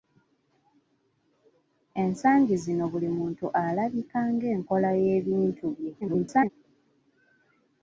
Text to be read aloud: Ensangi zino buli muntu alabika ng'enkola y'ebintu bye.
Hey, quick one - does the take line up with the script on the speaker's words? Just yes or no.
no